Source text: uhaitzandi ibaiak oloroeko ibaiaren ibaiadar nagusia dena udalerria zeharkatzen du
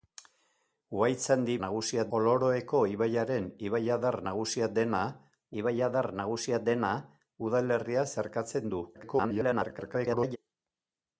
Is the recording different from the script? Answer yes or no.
yes